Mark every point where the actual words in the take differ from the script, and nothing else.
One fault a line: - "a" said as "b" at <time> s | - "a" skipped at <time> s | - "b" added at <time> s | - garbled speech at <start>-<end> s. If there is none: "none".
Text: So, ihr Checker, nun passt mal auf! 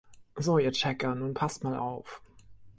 none